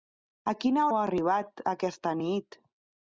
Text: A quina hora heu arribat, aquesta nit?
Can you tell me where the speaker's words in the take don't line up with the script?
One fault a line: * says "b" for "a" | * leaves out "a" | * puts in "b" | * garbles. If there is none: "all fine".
* leaves out "hora"